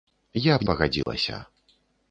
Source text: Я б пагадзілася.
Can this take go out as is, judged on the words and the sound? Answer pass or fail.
fail